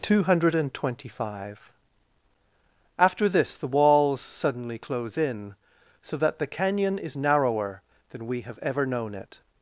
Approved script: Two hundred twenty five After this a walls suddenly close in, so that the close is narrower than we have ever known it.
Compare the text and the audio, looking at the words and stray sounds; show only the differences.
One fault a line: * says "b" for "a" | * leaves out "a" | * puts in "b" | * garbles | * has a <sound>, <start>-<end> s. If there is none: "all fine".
* says "the" for "a"
* says "canyon" for "close"